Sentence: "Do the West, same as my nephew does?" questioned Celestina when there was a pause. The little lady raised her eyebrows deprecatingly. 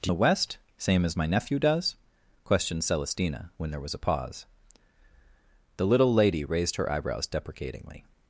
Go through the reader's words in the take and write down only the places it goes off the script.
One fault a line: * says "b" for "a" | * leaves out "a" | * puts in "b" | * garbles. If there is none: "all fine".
all fine